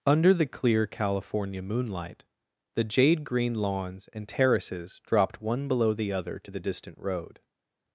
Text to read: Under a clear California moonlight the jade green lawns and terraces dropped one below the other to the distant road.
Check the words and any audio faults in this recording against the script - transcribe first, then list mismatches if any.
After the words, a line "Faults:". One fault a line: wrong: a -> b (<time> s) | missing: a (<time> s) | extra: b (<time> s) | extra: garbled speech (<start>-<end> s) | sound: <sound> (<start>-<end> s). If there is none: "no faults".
Under the clear California moonlight the jade green lawns and terraces dropped one below the other to the distant road.
Faults:
wrong: a -> the (0.3 s)